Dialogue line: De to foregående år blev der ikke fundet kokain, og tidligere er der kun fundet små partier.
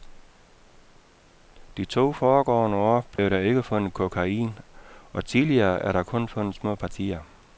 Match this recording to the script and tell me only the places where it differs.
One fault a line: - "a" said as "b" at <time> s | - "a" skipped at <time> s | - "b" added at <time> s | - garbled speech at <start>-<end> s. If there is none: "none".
none